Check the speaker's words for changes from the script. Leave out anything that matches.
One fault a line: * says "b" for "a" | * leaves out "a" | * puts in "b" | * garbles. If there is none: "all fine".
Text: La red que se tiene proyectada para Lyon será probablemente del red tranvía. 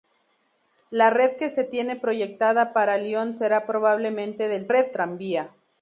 all fine